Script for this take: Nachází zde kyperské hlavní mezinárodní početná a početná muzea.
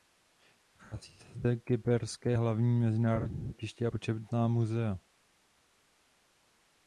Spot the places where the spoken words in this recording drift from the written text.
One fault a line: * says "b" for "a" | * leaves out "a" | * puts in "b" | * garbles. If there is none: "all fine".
* puts in "se"
* says "letiště" for "početná"